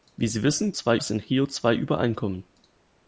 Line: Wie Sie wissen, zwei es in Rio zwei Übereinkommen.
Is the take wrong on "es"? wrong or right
right